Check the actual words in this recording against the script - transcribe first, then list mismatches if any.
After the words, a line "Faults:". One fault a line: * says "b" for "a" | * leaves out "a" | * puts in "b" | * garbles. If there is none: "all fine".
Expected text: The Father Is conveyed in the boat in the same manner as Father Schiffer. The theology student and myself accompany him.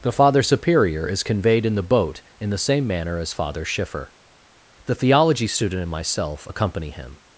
The Father Superior is conveyed in the boat in the same manner as Father Schiffer. The theology student and myself accompany him.
Faults:
* puts in "Superior"